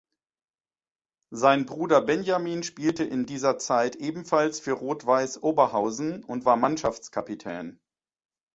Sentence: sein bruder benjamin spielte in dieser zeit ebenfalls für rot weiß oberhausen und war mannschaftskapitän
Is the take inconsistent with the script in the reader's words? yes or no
no